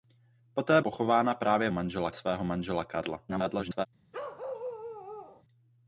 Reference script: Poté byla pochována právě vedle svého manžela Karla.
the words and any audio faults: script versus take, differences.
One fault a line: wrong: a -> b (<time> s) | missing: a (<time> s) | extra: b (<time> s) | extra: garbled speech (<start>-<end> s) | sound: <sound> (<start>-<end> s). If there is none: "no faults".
missing: byla (0.8 s)
wrong: vedle -> manžela (1.7 s)
extra: garbled speech (3.3-3.9 s)
sound: bark (4.1-5.4 s)